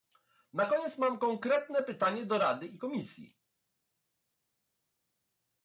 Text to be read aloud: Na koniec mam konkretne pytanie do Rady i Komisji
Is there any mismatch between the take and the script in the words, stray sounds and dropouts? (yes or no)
no